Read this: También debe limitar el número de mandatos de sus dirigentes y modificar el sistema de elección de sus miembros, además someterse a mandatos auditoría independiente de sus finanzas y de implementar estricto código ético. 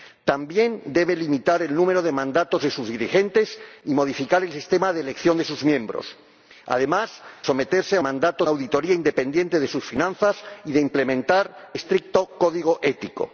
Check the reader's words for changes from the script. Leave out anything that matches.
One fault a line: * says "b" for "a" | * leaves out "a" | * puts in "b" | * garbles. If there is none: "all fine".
all fine